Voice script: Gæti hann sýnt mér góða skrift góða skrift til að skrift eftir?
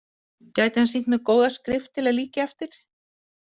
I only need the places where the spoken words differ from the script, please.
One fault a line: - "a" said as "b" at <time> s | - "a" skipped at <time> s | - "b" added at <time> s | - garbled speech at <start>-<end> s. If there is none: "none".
- "góða skrift" skipped at 1.9 s
- "skrift" said as "líkja" at 2.2 s